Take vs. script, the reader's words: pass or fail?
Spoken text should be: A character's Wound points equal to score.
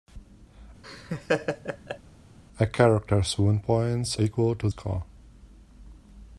pass